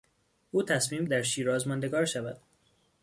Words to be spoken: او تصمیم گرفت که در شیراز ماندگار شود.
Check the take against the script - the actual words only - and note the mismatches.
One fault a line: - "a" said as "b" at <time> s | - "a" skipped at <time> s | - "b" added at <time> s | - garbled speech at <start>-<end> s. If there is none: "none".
- "گرفت که" skipped at 1.1 s